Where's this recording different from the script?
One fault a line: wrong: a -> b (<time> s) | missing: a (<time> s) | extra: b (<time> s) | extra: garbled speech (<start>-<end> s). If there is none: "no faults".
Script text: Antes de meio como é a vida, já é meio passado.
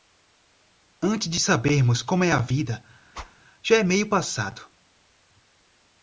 wrong: meio -> sabermos (1.4 s)